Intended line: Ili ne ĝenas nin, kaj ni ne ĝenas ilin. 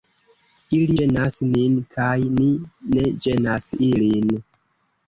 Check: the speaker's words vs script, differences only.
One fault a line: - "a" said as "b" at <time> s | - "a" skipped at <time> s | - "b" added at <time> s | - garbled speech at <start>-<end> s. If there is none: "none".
- "ne" skipped at 0.9 s